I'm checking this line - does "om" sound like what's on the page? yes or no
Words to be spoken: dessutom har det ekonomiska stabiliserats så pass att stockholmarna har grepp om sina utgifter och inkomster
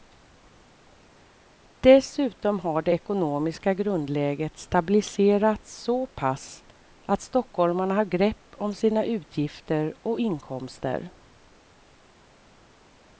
yes